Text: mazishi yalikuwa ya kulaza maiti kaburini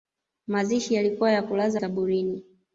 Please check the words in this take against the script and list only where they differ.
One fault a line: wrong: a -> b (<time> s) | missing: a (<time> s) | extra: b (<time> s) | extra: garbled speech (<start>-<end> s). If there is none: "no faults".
missing: maiti (1.8 s)